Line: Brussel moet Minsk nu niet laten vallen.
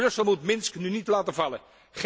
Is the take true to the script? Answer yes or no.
yes